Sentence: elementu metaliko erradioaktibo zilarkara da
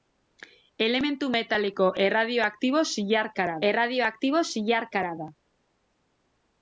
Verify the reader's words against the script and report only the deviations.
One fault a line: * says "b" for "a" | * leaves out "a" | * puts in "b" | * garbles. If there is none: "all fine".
* puts in "erradioaktibo zilarkara"